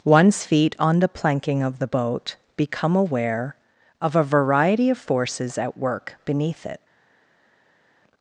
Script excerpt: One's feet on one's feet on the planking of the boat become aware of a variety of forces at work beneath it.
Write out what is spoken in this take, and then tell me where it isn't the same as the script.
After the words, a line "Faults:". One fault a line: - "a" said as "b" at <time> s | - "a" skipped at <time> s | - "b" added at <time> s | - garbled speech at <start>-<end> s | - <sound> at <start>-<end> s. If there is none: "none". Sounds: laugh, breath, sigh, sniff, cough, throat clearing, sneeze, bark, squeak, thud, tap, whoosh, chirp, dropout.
One's feet on the planking of the boat become aware of a variety of forces at work beneath it.
Faults:
- "one's feet on" skipped at 1.0 s